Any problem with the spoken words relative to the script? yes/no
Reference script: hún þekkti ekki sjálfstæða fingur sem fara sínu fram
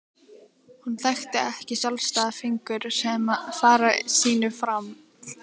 no